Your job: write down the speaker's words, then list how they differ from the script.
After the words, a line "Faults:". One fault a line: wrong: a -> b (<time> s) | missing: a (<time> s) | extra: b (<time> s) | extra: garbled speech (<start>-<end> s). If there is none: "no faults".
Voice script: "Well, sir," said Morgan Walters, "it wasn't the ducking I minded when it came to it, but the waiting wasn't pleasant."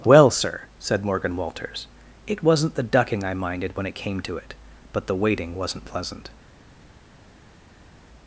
"Well, sir," said Morgan Walters, "it wasn't the ducking I minded when it came to it, but the waiting wasn't pleasant."
Faults:
no faults